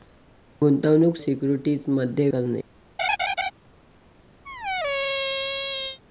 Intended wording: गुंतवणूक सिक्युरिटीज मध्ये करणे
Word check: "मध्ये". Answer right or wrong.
right